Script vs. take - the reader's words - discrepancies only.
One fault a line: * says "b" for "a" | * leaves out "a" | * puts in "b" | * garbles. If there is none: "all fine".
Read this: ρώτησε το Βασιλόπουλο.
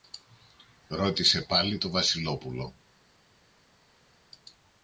* puts in "πάλι"